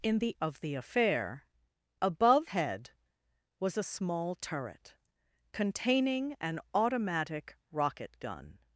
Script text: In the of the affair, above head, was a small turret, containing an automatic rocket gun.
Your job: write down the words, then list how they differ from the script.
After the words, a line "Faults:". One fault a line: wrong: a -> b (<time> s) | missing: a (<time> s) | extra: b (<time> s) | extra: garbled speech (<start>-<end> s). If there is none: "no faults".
In the of the affair, above head, was a small turret, containing an automatic rocket gun.
Faults:
no faults